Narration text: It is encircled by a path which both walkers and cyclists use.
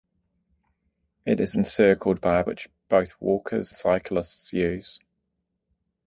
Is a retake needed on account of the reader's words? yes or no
yes